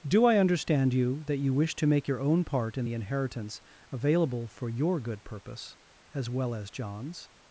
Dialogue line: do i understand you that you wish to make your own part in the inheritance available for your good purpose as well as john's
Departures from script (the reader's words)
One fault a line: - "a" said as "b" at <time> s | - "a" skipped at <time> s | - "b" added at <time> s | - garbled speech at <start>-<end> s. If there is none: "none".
none